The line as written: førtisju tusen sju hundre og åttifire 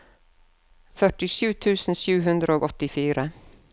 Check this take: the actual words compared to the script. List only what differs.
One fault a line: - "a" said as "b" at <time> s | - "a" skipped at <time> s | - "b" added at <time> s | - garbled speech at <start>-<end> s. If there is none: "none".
none